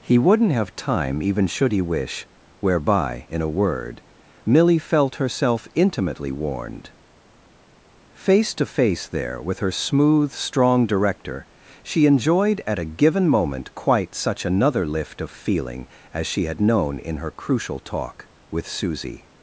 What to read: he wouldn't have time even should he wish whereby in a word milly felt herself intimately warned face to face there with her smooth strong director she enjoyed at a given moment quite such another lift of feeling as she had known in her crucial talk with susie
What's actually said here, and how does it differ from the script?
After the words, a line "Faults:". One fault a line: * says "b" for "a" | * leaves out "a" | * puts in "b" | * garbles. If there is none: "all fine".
he wouldn't have time even should he wish whereby in a word milly felt herself intimately warned face to face there with her smooth strong director she enjoyed at a given moment quite such another lift of feeling as she had known in her crucial talk with susie
Faults:
all fine